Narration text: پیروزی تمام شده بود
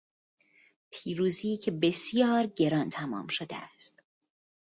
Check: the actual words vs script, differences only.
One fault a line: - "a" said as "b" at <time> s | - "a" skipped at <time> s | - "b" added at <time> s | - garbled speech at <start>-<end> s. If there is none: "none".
- "که بسیار گران" added at 1.6 s
- "بود" said as "است" at 3.6 s